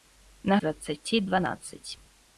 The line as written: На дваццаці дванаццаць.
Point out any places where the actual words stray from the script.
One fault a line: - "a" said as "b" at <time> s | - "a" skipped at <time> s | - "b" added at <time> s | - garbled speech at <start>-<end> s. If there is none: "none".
none